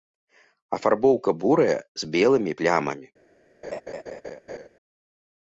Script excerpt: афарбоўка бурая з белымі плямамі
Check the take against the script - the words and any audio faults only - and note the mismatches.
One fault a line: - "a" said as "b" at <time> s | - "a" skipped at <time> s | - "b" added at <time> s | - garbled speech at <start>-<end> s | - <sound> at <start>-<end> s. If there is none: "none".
- laugh at 3.6-4.7 s